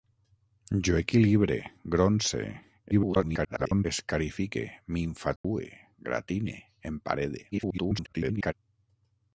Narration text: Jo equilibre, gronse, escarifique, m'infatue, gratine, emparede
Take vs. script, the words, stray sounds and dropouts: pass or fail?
fail